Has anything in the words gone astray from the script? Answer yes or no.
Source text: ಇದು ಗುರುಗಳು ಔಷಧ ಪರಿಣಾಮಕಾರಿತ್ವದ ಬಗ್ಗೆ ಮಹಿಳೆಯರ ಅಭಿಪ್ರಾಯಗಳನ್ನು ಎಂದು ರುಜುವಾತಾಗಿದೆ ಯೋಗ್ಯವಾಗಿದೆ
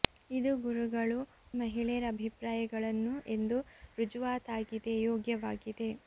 yes